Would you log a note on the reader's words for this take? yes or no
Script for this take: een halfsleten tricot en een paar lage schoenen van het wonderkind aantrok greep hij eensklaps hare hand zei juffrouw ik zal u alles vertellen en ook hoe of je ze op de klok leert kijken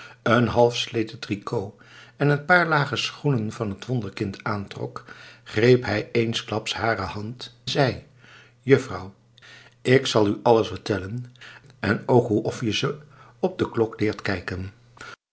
no